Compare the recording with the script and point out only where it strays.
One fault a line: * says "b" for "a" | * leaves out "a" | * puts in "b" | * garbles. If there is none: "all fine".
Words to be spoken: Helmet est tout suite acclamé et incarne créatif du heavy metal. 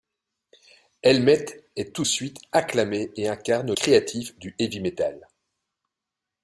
all fine